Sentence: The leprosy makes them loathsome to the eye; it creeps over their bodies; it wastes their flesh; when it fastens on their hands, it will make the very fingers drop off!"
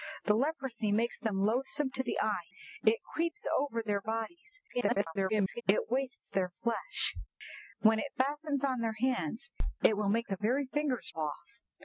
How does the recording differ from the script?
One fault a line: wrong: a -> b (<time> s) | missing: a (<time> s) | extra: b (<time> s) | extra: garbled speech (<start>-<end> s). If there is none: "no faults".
extra: garbled speech (4.7-5.6 s)
missing: drop (11.1 s)